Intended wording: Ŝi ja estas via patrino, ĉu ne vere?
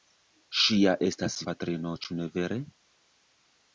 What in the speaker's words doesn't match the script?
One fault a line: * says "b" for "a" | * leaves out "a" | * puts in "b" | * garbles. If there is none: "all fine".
* leaves out "via"